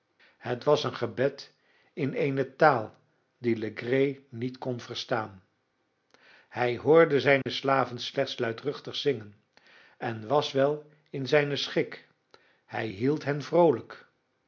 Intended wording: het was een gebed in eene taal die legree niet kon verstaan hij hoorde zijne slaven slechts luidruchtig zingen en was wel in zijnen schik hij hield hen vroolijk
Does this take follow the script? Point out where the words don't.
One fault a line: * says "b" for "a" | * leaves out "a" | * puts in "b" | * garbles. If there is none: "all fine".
all fine